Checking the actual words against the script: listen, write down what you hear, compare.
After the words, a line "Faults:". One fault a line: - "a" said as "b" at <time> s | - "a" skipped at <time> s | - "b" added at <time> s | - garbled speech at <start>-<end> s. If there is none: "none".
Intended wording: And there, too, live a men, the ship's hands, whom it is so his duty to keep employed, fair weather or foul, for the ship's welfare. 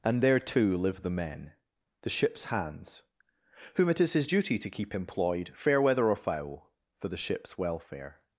And there, too, live the men, the ship's hands, whom it is his duty to keep employed, fair weather or foul, for the ship's welfare.
Faults:
- "a" said as "the" at 1.0 s
- "so" skipped at 4.1 s